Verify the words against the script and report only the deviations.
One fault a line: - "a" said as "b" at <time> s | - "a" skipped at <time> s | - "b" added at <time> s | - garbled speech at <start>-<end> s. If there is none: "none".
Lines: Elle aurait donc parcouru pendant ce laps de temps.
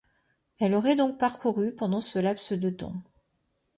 none